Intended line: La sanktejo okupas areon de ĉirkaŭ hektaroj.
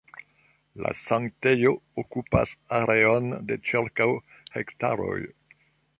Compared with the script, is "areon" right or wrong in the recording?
right